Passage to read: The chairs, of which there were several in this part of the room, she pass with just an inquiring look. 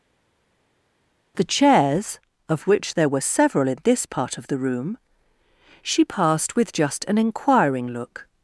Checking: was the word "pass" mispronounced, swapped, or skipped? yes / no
yes